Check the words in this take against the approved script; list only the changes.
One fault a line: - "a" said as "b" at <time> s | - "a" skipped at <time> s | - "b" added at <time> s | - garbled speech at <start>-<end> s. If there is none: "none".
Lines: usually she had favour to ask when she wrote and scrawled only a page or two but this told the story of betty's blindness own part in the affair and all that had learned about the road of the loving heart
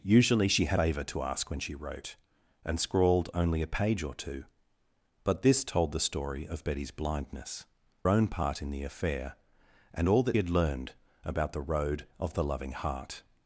none